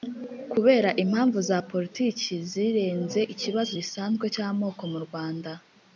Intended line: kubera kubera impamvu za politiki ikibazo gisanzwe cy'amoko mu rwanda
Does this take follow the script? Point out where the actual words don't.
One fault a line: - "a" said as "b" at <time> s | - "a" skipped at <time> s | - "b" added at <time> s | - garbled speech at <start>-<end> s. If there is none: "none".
- "kubera" skipped at 0.9 s
- "zirenze" added at 2.5 s